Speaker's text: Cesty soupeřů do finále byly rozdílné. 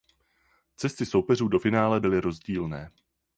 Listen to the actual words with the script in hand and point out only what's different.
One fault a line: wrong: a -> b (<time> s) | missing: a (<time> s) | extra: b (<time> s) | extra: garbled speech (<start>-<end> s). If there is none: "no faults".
no faults